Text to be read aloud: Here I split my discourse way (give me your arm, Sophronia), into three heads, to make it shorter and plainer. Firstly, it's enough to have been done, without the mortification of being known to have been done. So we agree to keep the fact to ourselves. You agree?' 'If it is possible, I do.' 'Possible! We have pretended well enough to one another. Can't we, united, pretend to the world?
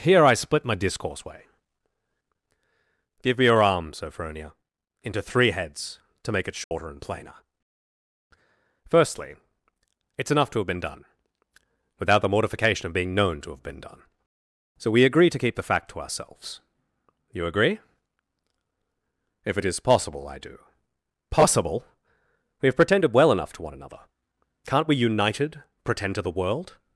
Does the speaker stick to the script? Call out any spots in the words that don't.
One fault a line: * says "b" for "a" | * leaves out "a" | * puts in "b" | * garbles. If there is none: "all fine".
all fine